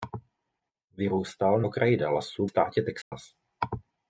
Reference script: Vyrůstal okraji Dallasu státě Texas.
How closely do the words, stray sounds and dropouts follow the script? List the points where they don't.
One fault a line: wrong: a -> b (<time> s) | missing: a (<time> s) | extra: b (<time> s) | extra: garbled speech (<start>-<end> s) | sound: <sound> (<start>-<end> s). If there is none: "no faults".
sound: dropout (3.0-3.1 s)